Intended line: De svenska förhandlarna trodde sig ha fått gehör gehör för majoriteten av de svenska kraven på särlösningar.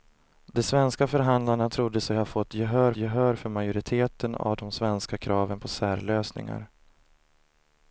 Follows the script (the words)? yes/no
yes